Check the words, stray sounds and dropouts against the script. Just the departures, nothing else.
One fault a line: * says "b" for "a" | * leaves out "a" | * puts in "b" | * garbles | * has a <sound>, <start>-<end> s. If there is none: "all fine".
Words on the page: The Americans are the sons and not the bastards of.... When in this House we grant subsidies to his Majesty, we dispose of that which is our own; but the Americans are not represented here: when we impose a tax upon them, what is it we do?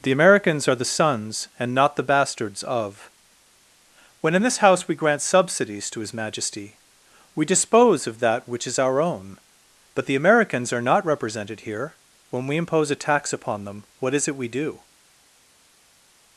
all fine